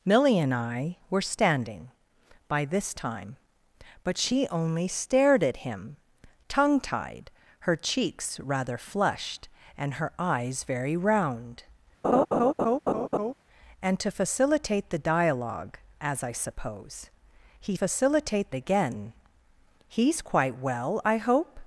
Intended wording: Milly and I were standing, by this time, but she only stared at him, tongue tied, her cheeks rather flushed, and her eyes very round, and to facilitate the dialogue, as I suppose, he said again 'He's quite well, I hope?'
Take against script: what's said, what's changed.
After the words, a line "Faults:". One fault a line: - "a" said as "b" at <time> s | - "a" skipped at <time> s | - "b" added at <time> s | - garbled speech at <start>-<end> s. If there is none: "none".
Milly and I were standing, by this time, but she only stared at him, tongue tied, her cheeks rather flushed, and her eyes very round, and to facilitate the dialogue, as I suppose, he facilitate again 'He's quite well, I hope?'
Faults:
- "said" said as "facilitate" at 17.7 s